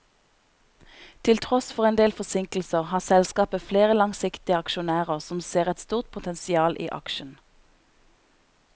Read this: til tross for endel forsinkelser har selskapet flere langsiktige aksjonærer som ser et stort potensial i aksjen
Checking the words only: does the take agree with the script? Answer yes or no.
yes